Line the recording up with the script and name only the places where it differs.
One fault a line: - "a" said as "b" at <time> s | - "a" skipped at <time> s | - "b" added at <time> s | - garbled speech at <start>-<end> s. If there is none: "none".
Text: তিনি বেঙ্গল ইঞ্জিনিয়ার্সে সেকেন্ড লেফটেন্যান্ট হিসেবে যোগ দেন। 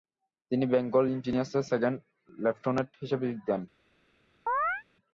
none